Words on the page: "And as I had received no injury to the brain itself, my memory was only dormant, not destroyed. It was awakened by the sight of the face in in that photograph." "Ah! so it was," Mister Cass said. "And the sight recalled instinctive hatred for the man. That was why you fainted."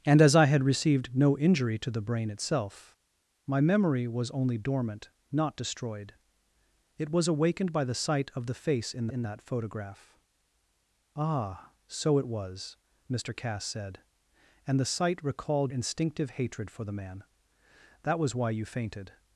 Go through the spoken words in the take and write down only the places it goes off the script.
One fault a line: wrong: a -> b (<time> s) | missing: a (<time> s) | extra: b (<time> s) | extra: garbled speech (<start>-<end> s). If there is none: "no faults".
no faults